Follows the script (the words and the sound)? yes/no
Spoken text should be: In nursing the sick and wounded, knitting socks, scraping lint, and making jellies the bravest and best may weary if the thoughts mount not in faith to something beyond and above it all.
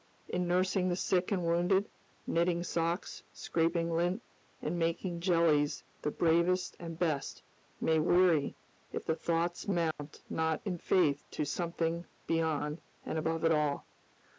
no